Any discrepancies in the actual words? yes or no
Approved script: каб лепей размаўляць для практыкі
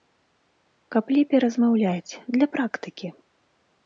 no